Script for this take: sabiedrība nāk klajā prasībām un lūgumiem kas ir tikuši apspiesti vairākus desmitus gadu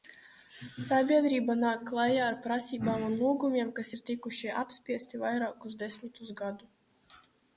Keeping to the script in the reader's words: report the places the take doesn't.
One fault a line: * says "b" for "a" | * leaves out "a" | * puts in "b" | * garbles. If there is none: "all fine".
* puts in "ar"